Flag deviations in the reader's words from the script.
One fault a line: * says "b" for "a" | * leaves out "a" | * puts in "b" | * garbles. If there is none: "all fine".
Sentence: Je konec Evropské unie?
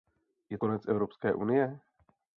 all fine